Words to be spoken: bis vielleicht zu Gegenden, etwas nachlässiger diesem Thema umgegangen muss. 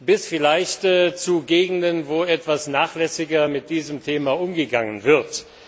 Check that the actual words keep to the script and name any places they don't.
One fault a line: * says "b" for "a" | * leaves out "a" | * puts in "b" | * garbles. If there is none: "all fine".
* puts in "wo"
* puts in "mit"
* says "wird" for "muss"